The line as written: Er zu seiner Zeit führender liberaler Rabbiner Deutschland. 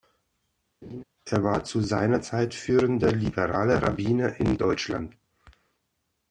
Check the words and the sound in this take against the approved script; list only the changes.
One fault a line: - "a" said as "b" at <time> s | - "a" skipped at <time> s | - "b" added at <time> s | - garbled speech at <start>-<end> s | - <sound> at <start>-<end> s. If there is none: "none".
- laugh at 0.8-1.0 s
- "war" added at 1.4 s
- "in" added at 4.4 s